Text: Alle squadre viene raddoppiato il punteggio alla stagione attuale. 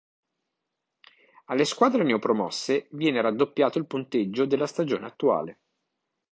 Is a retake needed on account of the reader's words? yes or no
yes